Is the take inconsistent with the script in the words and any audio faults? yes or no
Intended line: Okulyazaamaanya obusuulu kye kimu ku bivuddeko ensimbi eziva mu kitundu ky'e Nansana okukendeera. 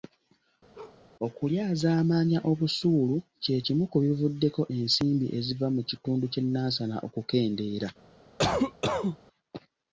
yes